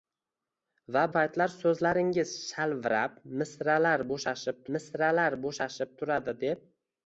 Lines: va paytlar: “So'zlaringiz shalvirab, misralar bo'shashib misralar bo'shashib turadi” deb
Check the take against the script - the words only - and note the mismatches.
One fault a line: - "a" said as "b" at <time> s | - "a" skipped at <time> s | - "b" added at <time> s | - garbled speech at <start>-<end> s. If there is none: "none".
none